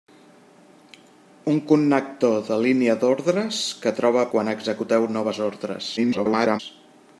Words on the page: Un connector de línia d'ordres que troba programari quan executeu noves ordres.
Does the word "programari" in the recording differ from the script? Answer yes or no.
yes